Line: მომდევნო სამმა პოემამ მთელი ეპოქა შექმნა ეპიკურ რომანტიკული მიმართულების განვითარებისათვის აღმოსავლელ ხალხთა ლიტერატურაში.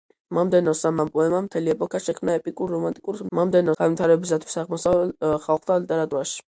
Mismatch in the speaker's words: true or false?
true